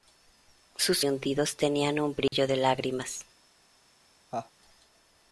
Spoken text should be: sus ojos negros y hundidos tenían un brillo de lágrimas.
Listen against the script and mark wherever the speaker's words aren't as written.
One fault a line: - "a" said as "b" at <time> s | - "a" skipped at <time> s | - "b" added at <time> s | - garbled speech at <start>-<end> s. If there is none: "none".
- "ojos negros" skipped at 1.1 s